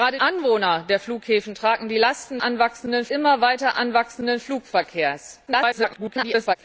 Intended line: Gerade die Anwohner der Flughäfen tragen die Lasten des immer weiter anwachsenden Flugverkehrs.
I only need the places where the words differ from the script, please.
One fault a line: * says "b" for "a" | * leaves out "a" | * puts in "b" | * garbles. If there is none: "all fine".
* leaves out "die"
* says "anwachsenden" for "des"
* garbles